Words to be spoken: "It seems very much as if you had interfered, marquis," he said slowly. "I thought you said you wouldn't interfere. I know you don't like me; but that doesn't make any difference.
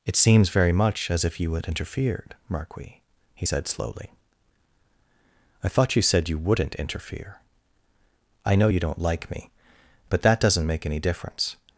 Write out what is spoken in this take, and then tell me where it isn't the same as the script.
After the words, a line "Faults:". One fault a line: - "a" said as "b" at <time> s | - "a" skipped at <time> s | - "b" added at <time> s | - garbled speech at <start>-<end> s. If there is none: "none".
"It seems very much as if you had interfered, marquis," he said slowly. "I thought you said you wouldn't interfere. I know you don't like me; but that doesn't make any difference.
Faults:
none